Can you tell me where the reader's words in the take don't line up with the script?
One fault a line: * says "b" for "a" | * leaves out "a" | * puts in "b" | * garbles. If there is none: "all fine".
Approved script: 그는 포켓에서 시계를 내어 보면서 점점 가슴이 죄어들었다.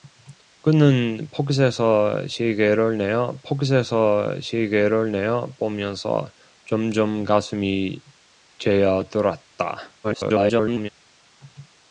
* puts in "포켓에서 시계를 내어"
* garbles